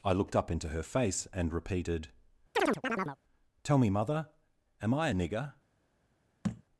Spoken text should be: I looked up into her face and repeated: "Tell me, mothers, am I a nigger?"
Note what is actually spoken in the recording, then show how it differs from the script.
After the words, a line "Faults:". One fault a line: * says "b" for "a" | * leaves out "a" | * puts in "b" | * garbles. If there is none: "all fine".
I looked up into her face and repeated: "Tell me, mother, am I a nigger?"
Faults:
* says "mother" for "mothers"